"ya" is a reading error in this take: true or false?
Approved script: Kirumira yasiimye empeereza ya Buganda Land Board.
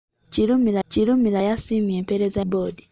true